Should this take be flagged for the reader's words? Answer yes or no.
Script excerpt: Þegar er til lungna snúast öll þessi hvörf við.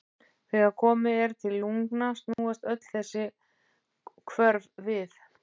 yes